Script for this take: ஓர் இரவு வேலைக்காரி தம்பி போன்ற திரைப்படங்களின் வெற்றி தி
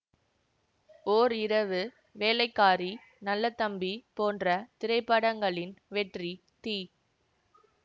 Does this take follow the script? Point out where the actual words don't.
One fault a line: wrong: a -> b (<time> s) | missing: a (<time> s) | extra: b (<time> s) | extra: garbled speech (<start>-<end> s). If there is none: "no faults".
extra: நல்ல (3.2 s)